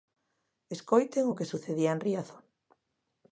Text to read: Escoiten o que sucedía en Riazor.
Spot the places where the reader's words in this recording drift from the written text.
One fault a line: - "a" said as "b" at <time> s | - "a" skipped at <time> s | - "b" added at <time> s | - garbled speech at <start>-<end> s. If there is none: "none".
none